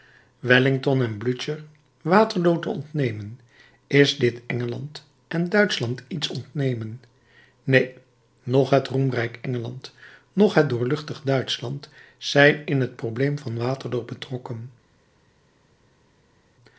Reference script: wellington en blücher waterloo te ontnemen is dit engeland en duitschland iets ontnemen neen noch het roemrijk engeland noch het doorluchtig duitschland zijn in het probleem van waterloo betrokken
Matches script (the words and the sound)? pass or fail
pass